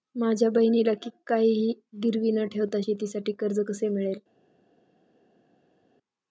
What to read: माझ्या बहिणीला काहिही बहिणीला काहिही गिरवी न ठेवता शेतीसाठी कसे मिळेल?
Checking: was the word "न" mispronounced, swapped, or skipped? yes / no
no